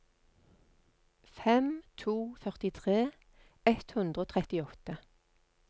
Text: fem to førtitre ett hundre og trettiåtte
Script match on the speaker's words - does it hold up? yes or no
yes